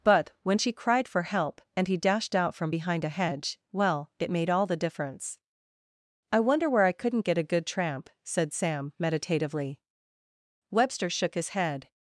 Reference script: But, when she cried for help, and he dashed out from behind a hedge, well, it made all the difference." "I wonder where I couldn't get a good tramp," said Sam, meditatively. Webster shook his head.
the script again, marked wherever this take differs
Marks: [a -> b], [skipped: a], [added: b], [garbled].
But, when she cried for help, and he dashed out from behind a hedge, well, it made all the difference." "I wonder where I couldn't get a good tramp," said Sam, meditatively. Webster shook his head.